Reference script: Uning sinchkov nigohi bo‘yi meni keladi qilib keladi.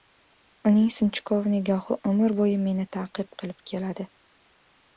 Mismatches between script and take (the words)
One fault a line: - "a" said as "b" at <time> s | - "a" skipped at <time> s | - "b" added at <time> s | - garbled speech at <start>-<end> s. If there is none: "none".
- "umr" added at 2.1 s
- "keladi" said as "ta'qib" at 3.0 s